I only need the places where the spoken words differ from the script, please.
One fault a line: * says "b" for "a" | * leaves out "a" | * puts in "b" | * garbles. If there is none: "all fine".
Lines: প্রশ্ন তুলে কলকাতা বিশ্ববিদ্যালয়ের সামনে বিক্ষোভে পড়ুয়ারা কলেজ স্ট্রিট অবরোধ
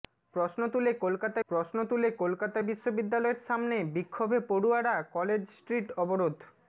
* puts in "প্রশ্ন তুলে কলকাতা"